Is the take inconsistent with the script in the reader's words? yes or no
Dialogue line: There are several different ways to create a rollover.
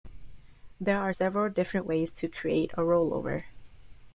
no